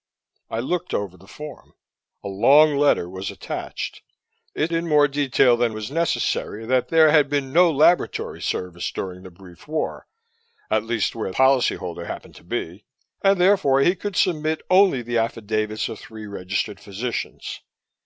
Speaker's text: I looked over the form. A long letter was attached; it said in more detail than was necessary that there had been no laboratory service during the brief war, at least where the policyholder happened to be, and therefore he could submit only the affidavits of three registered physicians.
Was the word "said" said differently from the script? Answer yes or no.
yes